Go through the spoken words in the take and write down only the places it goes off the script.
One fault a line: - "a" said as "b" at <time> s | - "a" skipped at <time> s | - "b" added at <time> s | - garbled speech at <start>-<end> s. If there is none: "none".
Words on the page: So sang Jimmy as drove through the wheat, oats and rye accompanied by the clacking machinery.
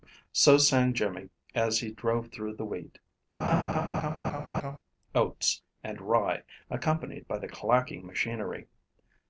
- "he" added at 1.8 s